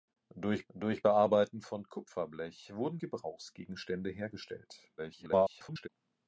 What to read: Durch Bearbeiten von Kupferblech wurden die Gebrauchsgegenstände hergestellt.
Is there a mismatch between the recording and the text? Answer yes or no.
yes